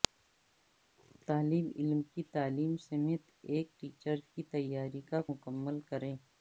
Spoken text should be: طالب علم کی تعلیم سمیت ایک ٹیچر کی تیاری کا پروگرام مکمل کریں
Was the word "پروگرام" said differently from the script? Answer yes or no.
yes